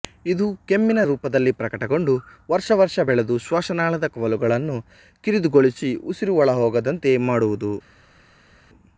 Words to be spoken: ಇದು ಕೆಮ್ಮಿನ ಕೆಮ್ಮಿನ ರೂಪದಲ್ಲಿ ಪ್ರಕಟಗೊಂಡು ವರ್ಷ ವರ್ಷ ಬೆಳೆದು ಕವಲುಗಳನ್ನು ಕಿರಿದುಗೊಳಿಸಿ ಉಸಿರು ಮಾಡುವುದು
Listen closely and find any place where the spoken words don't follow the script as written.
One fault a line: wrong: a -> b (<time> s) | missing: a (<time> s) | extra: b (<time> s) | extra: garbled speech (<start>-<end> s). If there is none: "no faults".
missing: ಕೆಮ್ಮಿನ (1.0 s)
extra: ಶ್ವಾಸನಾಳದ (3.4 s)
extra: ಒಳಹೋಗದಂತೆ (6.4 s)